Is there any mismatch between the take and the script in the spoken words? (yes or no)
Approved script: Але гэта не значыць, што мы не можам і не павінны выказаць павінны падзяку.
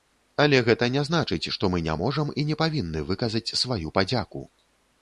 yes